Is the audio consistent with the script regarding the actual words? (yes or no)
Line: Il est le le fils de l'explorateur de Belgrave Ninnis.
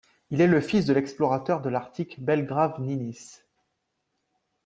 no